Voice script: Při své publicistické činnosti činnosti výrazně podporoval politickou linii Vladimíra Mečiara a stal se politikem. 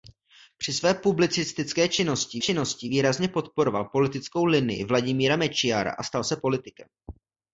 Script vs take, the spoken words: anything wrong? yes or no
no